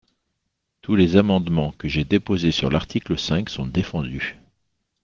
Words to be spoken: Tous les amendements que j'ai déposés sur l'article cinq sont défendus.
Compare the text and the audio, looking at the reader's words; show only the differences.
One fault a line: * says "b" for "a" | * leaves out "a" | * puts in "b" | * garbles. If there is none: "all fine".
all fine